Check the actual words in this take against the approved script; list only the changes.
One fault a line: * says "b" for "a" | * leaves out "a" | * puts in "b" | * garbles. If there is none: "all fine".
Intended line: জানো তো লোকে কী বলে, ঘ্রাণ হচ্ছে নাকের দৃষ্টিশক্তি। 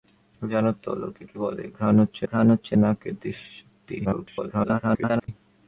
* puts in "ঘ্রাণ হচ্ছে"
* garbles